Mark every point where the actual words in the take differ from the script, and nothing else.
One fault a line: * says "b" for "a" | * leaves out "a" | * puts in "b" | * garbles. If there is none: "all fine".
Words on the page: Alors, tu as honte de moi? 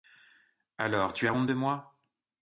all fine